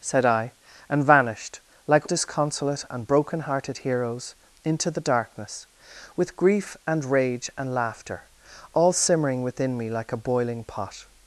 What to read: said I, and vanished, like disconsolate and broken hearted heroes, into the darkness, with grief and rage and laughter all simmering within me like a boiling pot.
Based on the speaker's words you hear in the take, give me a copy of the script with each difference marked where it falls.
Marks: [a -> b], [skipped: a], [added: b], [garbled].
said I, and vanished, like disconsolate and broken hearted heroes, into the darkness, with grief and rage and laughter all simmering within me like a boiling pot.